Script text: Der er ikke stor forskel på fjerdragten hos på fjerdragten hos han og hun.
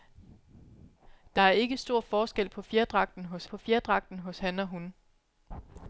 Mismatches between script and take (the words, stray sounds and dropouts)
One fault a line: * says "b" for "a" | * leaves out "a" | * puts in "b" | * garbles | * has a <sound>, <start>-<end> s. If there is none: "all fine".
all fine